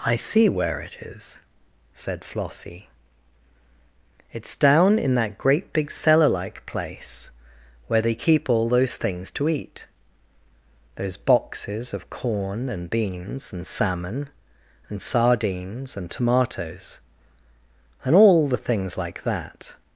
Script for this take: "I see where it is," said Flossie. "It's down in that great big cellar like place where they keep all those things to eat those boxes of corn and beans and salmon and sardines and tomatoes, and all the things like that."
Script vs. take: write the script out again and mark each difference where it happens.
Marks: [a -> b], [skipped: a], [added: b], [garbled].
"I see where it is," said Flossie. "It's down in that great big cellar like place where they keep all those things to eat those boxes of corn and beans and salmon and sardines and tomatoes, and all the things like that."